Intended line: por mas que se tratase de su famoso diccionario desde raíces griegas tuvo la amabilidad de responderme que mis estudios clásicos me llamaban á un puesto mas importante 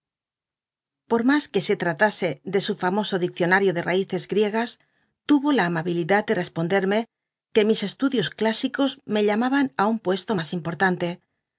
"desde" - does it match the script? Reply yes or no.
no